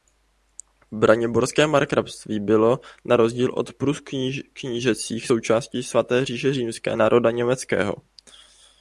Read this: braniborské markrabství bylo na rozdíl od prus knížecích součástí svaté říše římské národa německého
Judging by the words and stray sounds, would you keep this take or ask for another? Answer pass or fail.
pass